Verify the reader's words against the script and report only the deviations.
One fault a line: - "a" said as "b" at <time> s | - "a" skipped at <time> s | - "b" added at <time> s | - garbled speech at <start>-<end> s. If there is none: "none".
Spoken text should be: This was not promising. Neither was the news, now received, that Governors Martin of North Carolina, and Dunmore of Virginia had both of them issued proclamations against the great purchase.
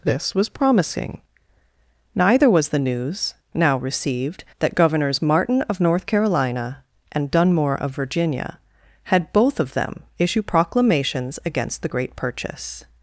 - "not" skipped at 0.5 s
- "issued" said as "issue" at 10.2 s